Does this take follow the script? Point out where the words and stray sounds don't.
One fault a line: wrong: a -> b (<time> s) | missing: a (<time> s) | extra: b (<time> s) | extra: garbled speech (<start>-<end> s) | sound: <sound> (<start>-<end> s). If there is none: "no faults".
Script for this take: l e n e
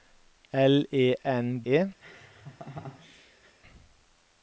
sound: laugh (2.0-3.5 s)